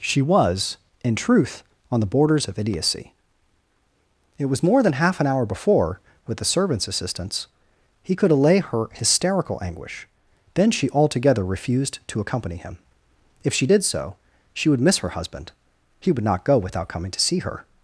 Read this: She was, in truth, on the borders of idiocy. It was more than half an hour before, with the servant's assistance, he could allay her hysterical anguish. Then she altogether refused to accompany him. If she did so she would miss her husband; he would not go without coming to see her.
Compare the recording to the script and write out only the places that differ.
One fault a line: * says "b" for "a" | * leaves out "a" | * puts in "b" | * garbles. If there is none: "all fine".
all fine